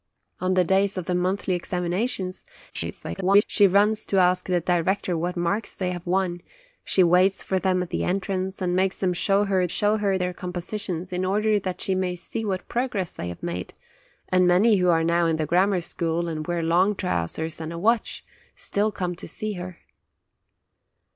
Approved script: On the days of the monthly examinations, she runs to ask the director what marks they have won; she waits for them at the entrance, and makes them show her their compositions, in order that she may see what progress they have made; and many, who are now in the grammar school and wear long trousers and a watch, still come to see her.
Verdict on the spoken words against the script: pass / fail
fail